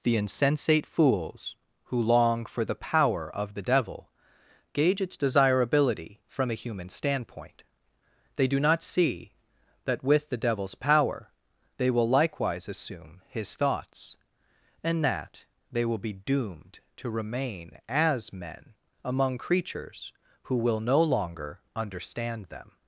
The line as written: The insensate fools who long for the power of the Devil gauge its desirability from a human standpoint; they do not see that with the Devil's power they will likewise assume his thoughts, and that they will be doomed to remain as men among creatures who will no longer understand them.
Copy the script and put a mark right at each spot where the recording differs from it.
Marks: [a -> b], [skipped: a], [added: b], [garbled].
The insensate fools who long for the power of the Devil gauge its desirability from a human standpoint; they do not see that with the Devil's power they will likewise assume his thoughts, and that they will be doomed to remain as men among creatures who will no longer understand them.